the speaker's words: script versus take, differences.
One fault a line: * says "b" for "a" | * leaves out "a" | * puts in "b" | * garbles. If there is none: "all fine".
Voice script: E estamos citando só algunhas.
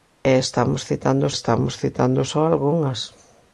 * puts in "estamos citando"